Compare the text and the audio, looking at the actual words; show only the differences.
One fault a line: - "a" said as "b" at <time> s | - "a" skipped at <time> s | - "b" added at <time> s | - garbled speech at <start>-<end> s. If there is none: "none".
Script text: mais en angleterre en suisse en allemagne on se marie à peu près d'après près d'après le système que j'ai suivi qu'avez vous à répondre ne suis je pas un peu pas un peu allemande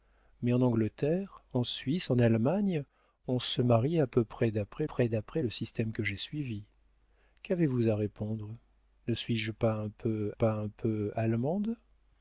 none